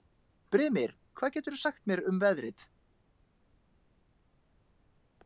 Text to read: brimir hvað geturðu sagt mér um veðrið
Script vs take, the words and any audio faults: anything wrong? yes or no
no